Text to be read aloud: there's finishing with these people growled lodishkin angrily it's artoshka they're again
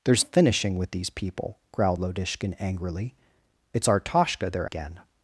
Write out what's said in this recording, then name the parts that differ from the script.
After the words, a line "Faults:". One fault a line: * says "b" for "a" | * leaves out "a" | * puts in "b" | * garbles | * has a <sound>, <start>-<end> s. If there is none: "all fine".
there's finishing with these people growled lodishkin angrily it's artoshka they're again
Faults:
all fine